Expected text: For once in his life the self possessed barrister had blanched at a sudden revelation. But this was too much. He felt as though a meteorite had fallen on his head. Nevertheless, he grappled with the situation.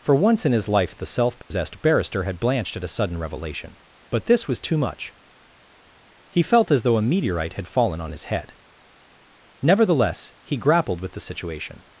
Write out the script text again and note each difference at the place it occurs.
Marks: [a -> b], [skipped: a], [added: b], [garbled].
For once in his life the self possessed barrister had blanched at a sudden revelation. But this was too much. He felt as though a meteorite had fallen on his head. Nevertheless, he grappled with the situation.